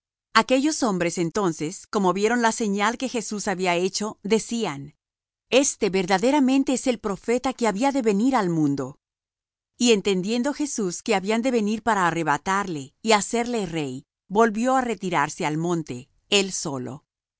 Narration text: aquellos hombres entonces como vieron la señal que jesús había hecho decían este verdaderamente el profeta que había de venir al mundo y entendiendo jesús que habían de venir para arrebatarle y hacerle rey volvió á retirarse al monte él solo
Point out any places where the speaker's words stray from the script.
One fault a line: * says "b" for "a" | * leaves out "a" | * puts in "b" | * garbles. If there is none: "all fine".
* puts in "es"